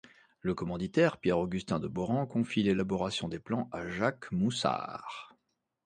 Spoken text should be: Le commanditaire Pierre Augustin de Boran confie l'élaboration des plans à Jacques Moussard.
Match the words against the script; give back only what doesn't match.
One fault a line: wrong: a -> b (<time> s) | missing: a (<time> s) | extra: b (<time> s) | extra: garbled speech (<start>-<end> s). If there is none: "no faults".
no faults